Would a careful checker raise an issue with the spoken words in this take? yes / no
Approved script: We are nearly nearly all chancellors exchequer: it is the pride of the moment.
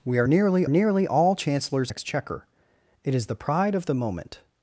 no